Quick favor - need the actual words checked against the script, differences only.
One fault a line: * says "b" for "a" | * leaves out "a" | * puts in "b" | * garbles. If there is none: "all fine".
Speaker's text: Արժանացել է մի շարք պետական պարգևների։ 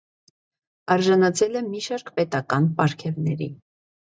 all fine